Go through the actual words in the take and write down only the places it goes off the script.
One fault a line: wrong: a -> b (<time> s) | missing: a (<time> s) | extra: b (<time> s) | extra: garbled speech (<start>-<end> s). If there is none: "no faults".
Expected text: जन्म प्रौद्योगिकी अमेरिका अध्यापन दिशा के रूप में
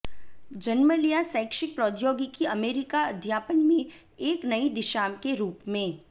extra: लिया शैक्षिक (0.9 s)
extra: में एक नई (3.7 s)